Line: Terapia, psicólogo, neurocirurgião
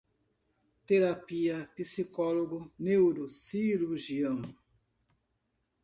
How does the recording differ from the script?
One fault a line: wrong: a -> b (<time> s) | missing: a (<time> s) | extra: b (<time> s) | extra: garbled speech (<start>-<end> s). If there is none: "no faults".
no faults